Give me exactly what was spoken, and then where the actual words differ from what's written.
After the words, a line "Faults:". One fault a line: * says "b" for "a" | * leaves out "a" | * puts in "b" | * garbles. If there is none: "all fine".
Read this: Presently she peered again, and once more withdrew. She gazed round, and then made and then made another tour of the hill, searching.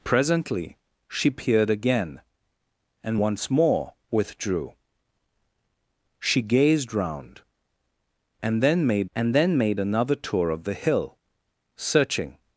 Presently she peered again, and once more withdrew. She gazed round, and then made and then made another tour of the hill, searching.
Faults:
all fine